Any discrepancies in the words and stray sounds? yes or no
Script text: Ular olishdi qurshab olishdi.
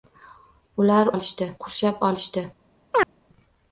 yes